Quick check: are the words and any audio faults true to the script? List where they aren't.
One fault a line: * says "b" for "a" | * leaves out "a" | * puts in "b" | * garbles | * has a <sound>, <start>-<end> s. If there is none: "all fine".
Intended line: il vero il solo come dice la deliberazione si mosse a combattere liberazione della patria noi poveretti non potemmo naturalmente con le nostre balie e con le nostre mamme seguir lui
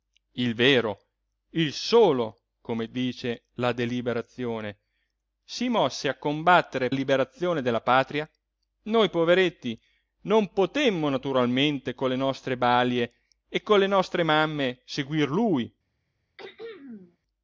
* has a throat clearing, 16.4-17.2 s